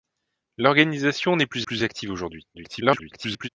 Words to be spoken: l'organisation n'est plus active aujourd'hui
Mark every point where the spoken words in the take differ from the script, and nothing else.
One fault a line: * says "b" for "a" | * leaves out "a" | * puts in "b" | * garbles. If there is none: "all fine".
* puts in "plus"
* garbles